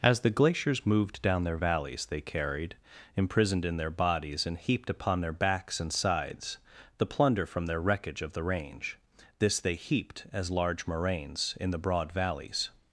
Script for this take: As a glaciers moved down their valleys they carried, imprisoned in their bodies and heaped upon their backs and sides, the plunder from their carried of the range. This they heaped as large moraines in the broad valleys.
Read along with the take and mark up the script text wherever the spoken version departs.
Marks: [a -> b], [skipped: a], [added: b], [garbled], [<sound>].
As [a -> the] glaciers moved down their valleys they carried, imprisoned in their bodies and heaped upon their backs and sides, the plunder from their [carried -> wreckage] of the range. This they heaped as large moraines in the broad valleys.